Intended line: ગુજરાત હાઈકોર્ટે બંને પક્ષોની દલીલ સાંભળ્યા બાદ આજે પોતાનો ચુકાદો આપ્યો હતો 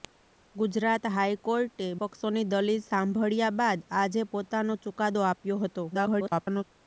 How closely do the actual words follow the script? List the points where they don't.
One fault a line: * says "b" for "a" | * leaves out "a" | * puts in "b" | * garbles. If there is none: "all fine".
* leaves out "બંને"
* garbles